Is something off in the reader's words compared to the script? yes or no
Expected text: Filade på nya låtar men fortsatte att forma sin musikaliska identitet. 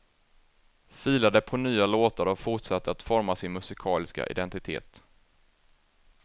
yes